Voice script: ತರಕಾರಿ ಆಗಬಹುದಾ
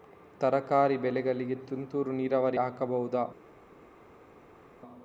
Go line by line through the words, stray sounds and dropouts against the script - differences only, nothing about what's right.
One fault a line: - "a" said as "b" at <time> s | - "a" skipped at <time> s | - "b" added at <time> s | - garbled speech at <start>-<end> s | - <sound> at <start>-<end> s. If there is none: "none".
- "ಬೆಳೆಗಳಿಗೆ ತುಂತುರು ನೀರಾವರಿ" added at 1.0 s